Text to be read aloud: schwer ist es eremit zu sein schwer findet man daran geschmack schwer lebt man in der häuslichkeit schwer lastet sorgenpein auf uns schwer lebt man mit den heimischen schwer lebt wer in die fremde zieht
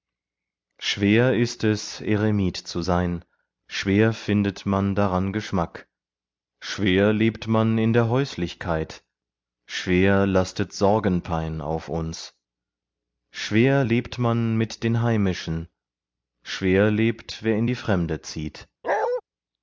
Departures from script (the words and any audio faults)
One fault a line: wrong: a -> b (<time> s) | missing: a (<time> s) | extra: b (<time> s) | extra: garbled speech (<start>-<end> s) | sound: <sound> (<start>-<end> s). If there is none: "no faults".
sound: bark (18.8-19.2 s)